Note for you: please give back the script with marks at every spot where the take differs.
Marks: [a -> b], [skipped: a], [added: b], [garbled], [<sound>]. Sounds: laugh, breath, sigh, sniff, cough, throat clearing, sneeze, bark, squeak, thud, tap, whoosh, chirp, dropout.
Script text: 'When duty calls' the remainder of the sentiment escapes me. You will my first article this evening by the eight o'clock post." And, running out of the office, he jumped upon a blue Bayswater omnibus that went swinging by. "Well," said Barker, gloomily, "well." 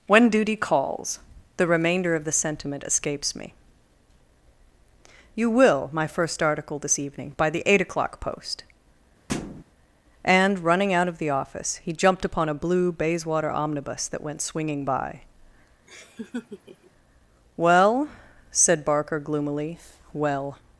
'When duty calls' the remainder of the sentiment escapes me. You will my first article this evening by the eight o'clock post." [thud] And, running out of the office, he jumped upon a blue Bayswater omnibus that went swinging by. [laugh] "Well," said Barker, gloomily, "well."